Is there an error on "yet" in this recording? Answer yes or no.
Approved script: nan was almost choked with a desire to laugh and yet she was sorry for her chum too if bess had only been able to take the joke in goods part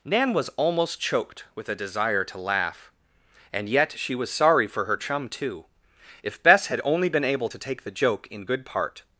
no